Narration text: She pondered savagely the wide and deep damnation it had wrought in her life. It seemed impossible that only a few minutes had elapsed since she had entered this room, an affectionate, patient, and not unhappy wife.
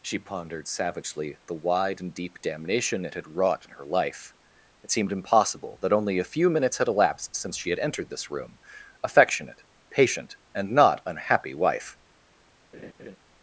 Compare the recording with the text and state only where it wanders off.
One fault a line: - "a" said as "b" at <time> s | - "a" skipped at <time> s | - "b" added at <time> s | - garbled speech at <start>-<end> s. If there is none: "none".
- "an" skipped at 8.6 s